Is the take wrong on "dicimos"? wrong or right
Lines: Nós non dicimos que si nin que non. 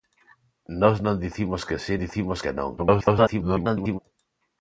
right